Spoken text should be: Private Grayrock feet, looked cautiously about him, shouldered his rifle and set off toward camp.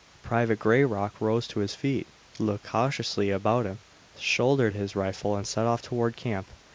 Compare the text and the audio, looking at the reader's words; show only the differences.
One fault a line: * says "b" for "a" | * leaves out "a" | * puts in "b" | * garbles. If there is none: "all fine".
* puts in "rose to his"